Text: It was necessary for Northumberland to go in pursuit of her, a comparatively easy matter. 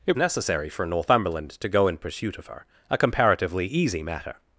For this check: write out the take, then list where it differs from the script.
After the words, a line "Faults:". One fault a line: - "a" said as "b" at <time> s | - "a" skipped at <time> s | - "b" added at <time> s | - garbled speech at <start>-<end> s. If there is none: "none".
It necessary for Northumberland to go in pursuit of her, a comparatively easy matter.
Faults:
- "was" skipped at 0.2 s